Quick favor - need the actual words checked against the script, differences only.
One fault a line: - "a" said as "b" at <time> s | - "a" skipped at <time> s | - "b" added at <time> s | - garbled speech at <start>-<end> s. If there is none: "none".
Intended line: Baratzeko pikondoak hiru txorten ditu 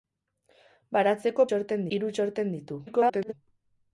- "pikondoak" said as "txorten" at 1.5 s
- garbled speech at 2.9-3.3 s